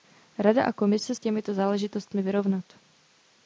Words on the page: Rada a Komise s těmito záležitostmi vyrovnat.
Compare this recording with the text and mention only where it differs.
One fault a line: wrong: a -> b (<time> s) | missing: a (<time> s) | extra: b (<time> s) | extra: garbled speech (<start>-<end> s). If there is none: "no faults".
no faults